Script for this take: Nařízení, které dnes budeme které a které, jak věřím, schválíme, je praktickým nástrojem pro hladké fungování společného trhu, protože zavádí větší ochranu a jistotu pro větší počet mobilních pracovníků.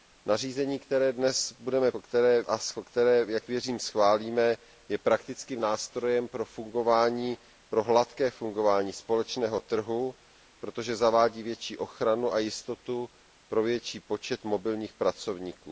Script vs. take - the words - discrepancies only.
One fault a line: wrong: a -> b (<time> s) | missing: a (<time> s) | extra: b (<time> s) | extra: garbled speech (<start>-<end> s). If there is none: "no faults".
no faults